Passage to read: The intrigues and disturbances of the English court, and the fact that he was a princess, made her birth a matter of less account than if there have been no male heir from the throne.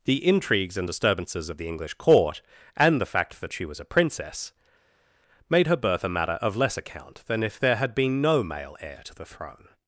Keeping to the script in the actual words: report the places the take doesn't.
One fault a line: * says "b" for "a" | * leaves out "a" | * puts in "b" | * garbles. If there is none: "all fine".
* says "she" for "he"
* says "had" for "have"
* says "to" for "from"